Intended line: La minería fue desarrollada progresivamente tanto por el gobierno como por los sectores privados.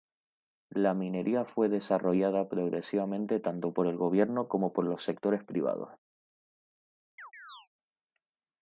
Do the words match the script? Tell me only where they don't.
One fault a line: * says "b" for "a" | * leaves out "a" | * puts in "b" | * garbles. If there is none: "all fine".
all fine